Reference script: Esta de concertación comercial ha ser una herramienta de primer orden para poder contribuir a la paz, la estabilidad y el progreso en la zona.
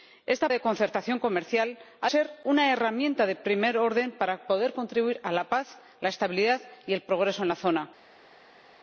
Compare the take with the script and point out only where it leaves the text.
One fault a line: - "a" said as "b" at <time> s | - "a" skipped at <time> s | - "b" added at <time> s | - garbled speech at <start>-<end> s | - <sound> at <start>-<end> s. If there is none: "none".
none